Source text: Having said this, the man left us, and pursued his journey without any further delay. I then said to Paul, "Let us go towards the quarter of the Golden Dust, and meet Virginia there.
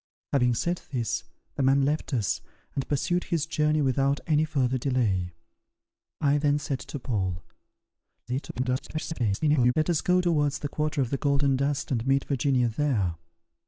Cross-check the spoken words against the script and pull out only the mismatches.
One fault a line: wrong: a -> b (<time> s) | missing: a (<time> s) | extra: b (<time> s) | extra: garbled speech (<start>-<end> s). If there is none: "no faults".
extra: garbled speech (8.3-9.7 s)